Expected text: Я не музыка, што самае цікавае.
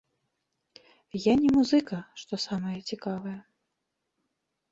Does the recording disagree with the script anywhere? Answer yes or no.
no